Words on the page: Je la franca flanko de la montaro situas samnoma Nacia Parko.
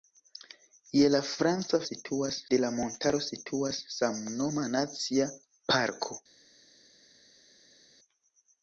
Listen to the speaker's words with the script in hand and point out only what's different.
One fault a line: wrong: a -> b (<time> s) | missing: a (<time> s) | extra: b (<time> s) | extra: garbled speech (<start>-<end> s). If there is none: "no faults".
wrong: flanko -> situas (1.9 s)